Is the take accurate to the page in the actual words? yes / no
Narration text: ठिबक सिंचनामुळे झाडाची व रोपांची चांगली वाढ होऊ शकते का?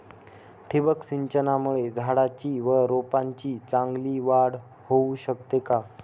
yes